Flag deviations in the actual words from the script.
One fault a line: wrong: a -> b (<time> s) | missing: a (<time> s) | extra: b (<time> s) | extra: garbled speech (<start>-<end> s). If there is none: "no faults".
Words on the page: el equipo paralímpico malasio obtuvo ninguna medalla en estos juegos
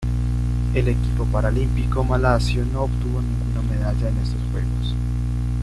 extra: no (2.7 s)